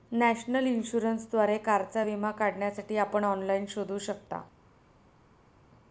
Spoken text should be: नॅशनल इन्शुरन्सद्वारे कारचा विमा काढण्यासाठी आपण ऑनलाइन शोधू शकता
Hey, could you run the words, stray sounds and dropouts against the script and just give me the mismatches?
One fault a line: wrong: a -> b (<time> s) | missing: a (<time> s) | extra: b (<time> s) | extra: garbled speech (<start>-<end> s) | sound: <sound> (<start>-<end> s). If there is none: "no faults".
no faults